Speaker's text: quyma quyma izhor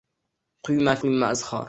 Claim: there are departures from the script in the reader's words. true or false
false